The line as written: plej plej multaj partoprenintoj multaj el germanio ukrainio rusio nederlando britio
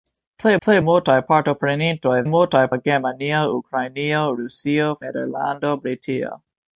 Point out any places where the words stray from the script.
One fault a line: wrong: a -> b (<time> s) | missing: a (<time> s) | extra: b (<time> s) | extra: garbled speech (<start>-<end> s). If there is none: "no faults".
no faults